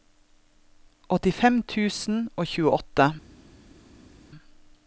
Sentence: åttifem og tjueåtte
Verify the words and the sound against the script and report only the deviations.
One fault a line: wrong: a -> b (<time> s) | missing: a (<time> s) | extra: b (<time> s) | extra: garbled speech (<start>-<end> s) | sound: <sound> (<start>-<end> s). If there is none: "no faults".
extra: tusen (1.7 s)